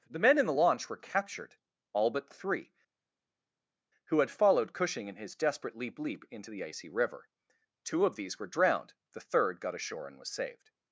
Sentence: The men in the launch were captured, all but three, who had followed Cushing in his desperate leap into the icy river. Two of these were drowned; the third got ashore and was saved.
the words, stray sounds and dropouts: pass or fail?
fail